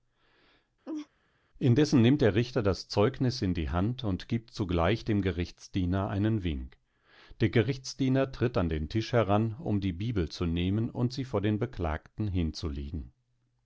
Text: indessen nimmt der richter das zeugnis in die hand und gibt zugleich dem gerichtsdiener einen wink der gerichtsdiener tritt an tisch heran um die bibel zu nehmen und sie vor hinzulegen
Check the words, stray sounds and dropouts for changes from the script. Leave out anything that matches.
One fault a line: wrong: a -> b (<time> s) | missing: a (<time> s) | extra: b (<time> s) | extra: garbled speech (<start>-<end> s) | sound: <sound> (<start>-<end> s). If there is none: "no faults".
sound: laugh (0.8-1.1 s)
extra: den (8.7 s)
extra: den beklagten (11.4 s)